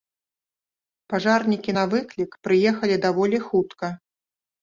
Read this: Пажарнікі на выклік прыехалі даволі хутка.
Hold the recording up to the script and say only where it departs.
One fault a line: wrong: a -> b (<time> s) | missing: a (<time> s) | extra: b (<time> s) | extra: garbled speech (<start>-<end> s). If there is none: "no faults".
no faults